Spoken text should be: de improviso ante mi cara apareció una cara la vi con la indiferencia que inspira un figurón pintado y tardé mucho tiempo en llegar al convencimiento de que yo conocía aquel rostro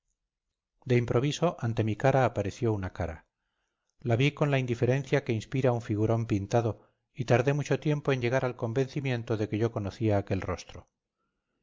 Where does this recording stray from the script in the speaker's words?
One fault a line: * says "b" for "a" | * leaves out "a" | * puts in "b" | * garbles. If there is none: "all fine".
all fine